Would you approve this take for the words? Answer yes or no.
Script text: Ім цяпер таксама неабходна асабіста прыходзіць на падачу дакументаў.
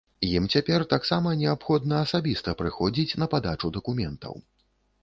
yes